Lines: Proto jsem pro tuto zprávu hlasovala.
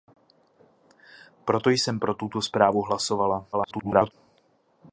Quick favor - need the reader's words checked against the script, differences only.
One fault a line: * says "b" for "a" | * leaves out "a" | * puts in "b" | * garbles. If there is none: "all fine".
* garbles